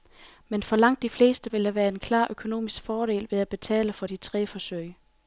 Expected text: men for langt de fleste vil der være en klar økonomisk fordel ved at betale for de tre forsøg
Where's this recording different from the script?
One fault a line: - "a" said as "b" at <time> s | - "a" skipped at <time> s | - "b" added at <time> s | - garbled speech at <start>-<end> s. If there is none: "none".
none